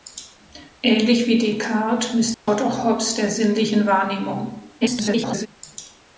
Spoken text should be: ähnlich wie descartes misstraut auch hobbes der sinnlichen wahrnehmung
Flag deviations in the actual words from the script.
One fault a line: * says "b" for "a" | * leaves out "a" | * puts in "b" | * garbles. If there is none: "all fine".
* garbles